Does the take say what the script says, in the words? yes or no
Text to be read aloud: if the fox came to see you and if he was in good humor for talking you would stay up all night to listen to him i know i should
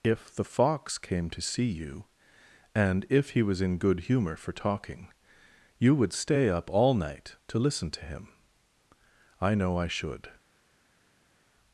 yes